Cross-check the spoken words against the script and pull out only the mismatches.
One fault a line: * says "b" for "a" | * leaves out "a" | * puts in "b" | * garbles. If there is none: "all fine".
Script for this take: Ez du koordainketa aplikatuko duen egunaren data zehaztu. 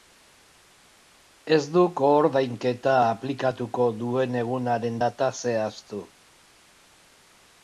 all fine